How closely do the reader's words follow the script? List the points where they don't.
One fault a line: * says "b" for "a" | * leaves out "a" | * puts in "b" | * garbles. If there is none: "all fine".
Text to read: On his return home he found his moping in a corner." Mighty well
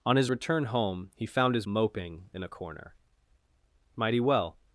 all fine